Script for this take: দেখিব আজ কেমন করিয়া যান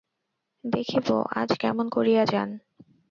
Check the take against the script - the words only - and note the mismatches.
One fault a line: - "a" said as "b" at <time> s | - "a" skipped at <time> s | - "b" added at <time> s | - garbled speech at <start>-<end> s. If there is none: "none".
none